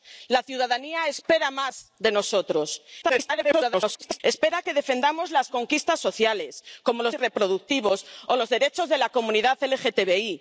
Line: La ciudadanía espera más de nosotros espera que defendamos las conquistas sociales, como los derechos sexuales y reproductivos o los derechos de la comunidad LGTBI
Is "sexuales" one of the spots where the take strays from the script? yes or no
yes